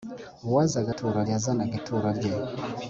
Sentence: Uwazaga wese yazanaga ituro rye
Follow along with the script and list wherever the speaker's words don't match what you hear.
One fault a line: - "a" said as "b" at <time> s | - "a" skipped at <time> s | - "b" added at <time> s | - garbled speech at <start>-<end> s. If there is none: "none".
- "wese" said as "ituro" at 0.9 s